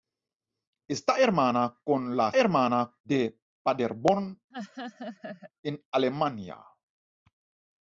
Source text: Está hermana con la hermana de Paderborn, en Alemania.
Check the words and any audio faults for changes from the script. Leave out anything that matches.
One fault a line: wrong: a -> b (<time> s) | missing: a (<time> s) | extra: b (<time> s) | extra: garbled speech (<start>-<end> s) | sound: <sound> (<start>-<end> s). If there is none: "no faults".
sound: laugh (4.5-5.5 s)